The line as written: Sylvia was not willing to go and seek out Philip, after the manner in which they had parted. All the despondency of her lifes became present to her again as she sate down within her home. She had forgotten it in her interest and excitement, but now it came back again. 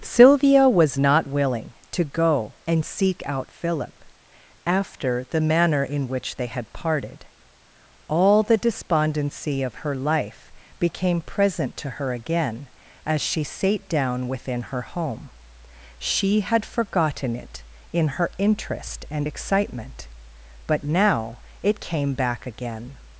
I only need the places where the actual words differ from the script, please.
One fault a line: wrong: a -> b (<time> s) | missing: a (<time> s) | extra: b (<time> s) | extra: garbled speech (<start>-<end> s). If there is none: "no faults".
wrong: lifes -> life (10.0 s)